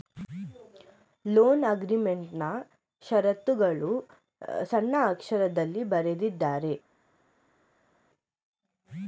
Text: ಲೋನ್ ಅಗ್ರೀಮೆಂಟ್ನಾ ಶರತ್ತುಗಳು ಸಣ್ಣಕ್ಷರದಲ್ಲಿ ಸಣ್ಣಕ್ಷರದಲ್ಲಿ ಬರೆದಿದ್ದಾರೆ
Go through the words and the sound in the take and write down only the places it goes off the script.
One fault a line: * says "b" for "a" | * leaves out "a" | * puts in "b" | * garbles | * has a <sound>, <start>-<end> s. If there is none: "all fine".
* leaves out "ಸಣ್ಣಕ್ಷರದಲ್ಲಿ"